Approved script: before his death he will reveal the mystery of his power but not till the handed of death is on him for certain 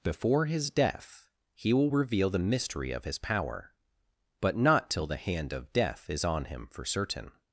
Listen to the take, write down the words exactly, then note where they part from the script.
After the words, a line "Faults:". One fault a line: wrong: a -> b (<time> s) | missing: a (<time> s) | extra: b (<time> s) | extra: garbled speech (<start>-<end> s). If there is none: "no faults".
before his death he will reveal the mystery of his power but not till the hand of death is on him for certain
Faults:
wrong: handed -> hand (5.2 s)